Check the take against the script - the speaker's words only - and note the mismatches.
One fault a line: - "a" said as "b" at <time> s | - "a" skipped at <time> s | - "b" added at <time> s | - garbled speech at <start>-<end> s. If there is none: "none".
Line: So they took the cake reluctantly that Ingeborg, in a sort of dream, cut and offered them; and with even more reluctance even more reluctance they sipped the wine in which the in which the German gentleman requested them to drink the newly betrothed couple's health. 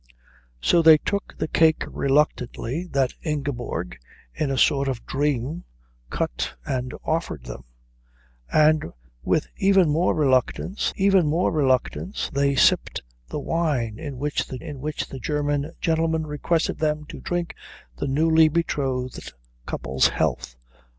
none